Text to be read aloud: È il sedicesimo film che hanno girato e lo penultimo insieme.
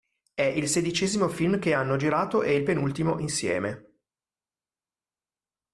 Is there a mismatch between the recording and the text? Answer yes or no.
yes